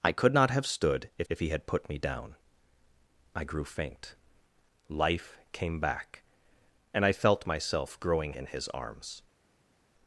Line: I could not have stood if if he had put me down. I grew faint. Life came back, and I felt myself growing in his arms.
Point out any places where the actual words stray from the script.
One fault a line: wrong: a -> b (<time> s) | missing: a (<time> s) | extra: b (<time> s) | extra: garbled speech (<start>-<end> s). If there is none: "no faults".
no faults